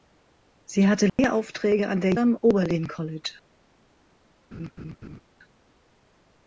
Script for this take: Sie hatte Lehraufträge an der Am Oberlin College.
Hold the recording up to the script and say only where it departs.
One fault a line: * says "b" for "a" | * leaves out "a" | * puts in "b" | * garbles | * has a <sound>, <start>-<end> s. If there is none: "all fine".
* has a dropout, 1.1-1.2 s
* has a laugh, 4.5-5.2 s